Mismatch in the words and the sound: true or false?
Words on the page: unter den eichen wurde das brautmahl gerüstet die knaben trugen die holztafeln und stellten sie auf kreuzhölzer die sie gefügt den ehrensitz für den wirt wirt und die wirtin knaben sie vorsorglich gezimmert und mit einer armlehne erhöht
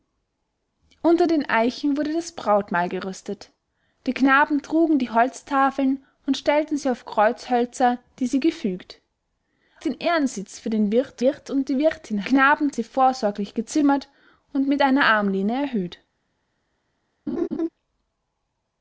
true